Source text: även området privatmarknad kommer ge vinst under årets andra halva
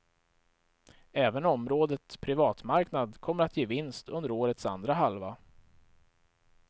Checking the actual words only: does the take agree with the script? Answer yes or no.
no